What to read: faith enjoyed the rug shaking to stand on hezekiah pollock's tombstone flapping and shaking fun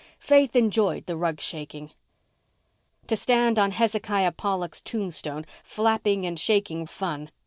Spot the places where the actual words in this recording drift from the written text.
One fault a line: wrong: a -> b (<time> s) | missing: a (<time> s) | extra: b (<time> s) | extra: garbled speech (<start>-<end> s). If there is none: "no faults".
no faults